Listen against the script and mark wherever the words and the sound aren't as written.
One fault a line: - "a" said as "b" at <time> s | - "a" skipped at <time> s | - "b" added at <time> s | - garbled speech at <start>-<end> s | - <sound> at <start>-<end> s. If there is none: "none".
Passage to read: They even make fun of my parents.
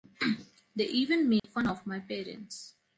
- dropout at 1.4-1.4 s